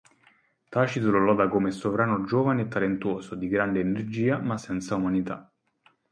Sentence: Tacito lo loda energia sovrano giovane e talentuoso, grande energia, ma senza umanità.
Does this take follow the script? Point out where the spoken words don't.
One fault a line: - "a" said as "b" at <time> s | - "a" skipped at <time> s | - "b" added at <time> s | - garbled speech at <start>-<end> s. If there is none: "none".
- "energia" said as "come" at 1.5 s
- "di" added at 3.4 s